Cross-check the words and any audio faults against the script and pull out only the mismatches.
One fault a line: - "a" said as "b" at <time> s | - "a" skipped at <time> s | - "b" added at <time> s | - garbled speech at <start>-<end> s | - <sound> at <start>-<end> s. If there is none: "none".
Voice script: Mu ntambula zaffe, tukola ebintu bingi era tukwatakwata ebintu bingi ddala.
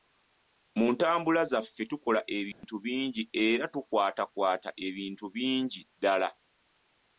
- dropout at 2.5-2.6 s